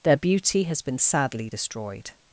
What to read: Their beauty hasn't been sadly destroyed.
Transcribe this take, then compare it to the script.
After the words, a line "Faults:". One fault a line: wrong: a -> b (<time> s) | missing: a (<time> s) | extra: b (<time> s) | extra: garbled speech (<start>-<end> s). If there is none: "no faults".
Their beauty has been sadly destroyed.
Faults:
wrong: hasn't -> has (0.6 s)